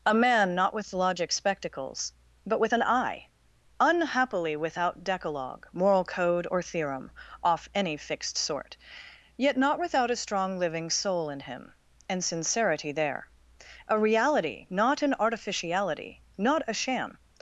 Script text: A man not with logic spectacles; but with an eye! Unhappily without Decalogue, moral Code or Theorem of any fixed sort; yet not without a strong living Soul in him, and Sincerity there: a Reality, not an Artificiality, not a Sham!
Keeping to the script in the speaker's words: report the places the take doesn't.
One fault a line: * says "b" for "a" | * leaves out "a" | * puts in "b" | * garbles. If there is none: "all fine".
* says "off" for "of"